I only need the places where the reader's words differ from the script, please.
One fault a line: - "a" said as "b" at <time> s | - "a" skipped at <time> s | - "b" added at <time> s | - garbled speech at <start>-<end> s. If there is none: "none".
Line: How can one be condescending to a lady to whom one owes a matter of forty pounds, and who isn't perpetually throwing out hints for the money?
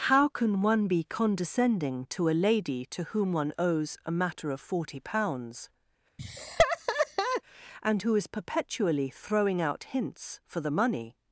- "isn't" said as "is" at 8.1 s